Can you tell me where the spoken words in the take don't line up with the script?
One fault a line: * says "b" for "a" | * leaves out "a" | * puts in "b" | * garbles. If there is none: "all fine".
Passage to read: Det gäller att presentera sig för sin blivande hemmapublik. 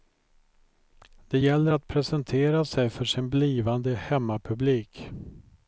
all fine